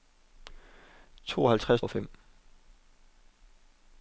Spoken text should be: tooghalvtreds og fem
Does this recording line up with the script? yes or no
yes